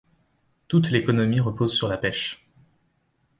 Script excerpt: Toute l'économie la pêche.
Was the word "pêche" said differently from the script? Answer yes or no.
no